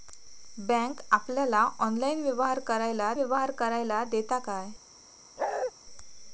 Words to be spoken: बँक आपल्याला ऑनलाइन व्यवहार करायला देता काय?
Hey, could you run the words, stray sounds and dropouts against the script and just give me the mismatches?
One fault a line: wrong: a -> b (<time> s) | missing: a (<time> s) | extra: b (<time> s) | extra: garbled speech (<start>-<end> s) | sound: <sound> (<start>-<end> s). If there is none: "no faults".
extra: व्यवहार करायला (3.2 s)
sound: bark (5.4-5.7 s)